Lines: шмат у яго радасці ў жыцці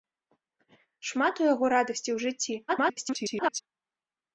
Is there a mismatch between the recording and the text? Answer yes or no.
yes